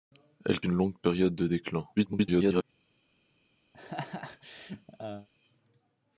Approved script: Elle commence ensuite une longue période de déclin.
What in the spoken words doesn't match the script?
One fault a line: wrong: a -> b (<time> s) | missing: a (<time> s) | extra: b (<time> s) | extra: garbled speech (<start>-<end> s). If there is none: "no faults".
missing: commence ensuite (0.6 s)
extra: garbled speech (2.0-2.6 s)